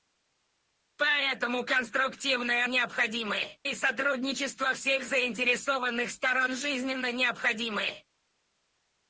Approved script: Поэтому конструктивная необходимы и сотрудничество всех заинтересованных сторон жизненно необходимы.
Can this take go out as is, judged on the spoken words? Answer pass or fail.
pass